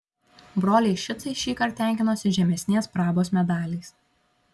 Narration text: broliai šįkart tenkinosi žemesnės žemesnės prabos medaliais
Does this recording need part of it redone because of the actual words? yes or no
yes